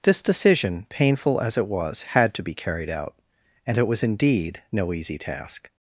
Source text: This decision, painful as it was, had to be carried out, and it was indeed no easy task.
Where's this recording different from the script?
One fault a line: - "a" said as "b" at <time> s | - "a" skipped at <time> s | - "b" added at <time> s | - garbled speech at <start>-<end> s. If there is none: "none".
none